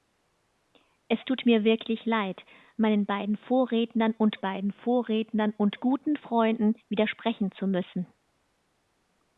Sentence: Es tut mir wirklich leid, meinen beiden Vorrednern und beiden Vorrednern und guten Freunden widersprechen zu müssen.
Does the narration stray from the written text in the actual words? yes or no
no